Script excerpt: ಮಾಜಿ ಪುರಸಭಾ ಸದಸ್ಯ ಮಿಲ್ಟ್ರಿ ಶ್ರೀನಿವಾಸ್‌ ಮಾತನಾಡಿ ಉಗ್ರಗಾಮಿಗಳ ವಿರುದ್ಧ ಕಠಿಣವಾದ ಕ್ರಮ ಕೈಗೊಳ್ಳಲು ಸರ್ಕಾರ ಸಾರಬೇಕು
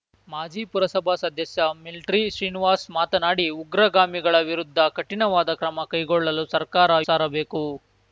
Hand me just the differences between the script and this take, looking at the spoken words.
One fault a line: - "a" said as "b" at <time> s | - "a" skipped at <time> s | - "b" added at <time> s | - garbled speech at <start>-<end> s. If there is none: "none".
none